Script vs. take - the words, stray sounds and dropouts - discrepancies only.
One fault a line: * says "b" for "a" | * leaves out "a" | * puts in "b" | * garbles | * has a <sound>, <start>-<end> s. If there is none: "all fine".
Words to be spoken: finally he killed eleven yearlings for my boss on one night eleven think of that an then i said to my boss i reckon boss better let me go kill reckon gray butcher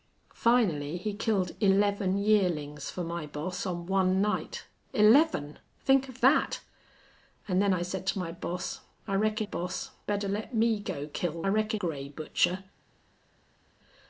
all fine